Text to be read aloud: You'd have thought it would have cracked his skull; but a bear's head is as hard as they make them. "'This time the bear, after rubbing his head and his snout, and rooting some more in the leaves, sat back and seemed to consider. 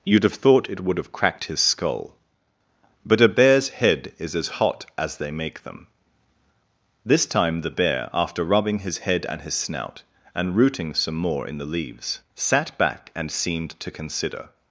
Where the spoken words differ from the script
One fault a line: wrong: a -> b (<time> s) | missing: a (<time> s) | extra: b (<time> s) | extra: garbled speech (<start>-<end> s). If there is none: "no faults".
wrong: hard -> hot (4.6 s)